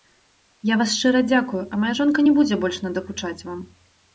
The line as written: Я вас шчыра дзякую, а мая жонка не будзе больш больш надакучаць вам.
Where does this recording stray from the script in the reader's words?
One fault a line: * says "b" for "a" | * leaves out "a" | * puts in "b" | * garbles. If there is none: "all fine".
* leaves out "больш"